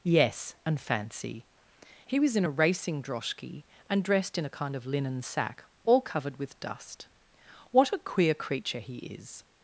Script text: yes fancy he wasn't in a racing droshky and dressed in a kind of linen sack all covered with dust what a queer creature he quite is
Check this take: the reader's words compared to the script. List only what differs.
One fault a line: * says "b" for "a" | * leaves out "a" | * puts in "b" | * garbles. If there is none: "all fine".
* puts in "and"
* says "was" for "wasn't"
* leaves out "quite"